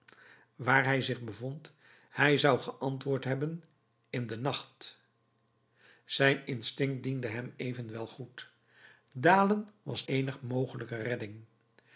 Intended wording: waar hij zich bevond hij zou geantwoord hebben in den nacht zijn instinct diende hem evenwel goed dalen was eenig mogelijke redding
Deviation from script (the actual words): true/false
false